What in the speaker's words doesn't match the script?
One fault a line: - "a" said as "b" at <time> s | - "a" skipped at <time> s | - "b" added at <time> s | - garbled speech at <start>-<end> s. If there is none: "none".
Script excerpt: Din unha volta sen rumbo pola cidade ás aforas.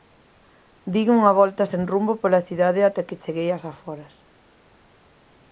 - "ata que cheguei" added at 2.9 s